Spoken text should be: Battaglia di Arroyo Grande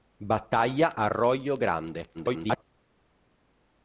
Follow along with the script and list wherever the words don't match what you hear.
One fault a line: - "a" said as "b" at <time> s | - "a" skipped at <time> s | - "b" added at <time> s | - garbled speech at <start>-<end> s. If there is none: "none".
- "di" skipped at 0.9 s
- garbled speech at 2.1-2.6 s